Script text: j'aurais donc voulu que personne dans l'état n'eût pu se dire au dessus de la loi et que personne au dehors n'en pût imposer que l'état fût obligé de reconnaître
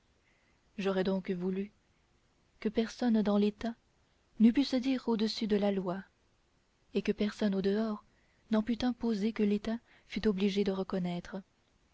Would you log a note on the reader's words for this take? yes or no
no